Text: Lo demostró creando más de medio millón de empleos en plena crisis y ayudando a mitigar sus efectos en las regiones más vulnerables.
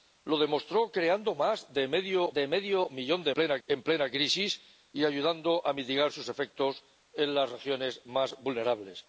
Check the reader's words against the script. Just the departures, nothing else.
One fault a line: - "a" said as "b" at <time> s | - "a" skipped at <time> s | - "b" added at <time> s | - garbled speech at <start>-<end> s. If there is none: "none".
- "de medio" added at 2.3 s
- "empleos" said as "plena" at 3.3 s